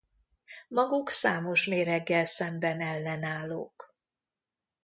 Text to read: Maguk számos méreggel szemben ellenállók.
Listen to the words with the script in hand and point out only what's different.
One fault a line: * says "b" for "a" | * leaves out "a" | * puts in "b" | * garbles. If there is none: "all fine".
all fine